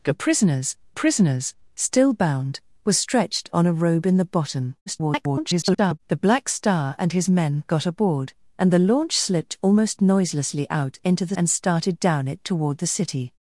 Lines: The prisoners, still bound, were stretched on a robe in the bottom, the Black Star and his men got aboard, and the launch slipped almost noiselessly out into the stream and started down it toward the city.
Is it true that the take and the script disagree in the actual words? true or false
true